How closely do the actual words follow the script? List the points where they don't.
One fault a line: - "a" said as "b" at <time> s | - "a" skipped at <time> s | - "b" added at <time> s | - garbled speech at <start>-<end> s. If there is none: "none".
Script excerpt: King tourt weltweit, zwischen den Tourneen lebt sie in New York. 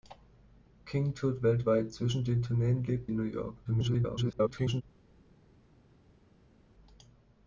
- "sie" skipped at 3.1 s
- garbled speech at 3.6-4.8 s